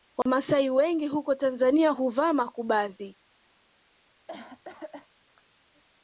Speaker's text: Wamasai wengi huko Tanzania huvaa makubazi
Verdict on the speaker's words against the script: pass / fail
pass